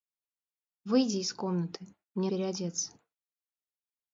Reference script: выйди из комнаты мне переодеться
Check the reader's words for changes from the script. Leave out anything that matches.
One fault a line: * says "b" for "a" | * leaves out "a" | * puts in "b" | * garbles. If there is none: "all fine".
all fine